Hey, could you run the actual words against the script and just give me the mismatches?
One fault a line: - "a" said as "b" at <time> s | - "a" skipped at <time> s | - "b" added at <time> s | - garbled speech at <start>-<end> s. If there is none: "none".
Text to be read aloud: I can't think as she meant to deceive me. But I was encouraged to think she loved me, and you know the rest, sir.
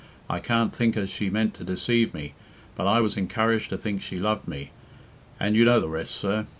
none